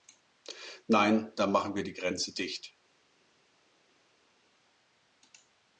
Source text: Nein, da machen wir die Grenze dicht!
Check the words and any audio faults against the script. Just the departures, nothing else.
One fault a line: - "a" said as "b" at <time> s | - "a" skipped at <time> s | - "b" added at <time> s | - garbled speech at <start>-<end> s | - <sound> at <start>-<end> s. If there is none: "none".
none